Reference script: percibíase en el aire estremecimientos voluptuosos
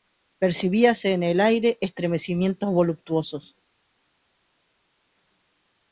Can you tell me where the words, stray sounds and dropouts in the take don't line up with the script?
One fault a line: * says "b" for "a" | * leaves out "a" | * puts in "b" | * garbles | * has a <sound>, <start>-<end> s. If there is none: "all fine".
all fine